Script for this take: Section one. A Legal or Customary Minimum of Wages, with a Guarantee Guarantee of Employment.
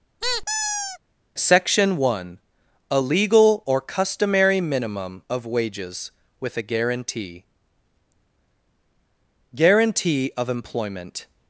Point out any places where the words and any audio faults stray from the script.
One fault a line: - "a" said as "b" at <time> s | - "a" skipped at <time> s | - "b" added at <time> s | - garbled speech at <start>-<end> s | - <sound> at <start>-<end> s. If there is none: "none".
- squeak at 0.2-1.0 s